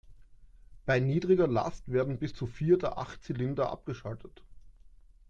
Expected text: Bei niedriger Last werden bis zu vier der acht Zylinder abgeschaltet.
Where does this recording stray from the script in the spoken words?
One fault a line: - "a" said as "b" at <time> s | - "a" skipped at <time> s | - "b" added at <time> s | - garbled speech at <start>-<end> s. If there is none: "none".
none